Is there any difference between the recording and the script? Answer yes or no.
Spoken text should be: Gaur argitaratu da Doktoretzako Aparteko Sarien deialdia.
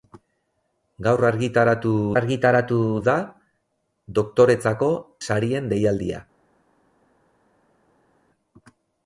yes